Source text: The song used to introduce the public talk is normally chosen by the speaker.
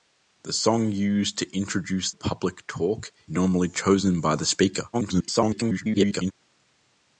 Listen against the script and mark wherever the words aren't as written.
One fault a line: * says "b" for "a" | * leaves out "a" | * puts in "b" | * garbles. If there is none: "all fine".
* leaves out "the"
* leaves out "is"
* garbles